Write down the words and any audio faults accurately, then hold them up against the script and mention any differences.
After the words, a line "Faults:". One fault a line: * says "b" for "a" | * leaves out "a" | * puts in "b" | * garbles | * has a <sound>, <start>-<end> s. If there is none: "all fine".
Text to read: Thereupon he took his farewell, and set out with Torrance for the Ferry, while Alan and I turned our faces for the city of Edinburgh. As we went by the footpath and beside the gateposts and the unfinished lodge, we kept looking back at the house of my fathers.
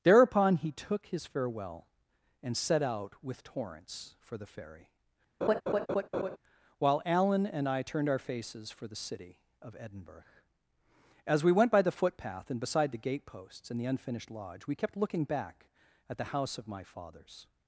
Thereupon he took his farewell, and set out with Torrance for the Ferry, while Alan and I turned our faces for the city of Edinburgh. As we went by the footpath and beside the gateposts and the unfinished lodge, we kept looking back at the house of my fathers.
Faults:
* has a laugh, 5.4-6.4 s